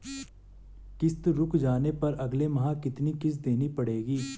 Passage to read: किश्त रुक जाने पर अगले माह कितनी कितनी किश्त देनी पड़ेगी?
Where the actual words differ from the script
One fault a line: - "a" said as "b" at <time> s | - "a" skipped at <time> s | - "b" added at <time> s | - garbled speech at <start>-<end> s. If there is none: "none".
- "कितनी" skipped at 3.1 s